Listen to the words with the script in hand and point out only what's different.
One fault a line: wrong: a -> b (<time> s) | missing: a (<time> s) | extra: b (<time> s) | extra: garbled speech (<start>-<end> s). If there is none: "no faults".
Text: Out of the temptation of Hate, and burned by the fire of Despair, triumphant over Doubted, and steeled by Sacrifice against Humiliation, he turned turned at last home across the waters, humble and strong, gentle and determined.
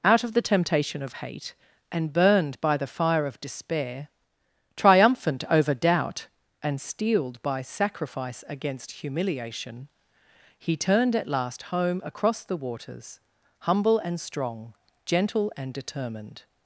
wrong: Doubted -> Doubt (5.7 s)
missing: turned (11.2 s)